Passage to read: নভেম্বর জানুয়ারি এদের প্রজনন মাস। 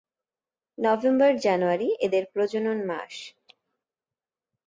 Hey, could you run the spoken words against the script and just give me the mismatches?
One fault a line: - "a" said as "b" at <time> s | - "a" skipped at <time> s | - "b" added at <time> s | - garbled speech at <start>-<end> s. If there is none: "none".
none